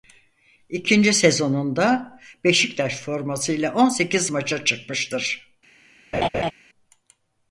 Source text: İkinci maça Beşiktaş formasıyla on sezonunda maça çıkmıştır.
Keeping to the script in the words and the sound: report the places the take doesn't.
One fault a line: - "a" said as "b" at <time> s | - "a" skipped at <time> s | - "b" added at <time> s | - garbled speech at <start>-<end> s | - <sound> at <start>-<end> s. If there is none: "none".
- "maça" said as "sezonunda" at 1.1 s
- "sezonunda" said as "sekiz" at 3.9 s
- laugh at 6.1-6.5 s